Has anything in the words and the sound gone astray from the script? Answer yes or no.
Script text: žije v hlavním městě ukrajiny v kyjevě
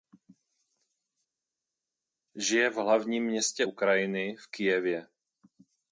no